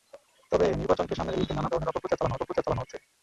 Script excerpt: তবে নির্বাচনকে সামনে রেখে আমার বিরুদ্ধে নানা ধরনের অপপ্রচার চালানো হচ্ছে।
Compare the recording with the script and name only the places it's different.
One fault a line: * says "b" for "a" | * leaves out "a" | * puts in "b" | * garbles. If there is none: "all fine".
* leaves out "রেখে আমার"
* puts in "অপপ্রচার চালানো"